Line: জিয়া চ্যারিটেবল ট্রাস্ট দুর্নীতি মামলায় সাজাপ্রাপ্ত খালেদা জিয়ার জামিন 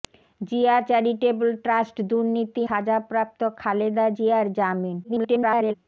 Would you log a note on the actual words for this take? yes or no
yes